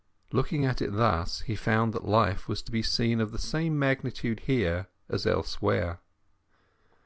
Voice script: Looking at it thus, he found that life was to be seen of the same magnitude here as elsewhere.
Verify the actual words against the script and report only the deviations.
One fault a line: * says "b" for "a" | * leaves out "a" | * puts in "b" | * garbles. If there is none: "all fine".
all fine